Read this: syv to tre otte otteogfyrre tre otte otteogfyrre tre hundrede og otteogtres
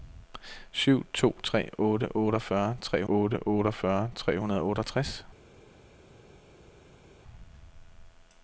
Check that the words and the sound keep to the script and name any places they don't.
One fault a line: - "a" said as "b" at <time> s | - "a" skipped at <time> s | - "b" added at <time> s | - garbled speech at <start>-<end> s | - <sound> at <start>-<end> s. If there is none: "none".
none